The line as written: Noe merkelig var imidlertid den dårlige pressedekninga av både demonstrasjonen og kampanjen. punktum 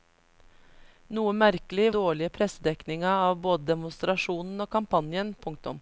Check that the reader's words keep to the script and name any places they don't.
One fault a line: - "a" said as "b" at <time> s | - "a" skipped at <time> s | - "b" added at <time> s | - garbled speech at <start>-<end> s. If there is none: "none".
- "var imidlertid den" skipped at 1.9 s